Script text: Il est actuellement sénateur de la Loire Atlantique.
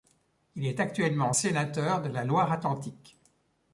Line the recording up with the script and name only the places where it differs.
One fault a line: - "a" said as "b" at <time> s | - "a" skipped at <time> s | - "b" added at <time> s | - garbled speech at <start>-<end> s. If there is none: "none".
none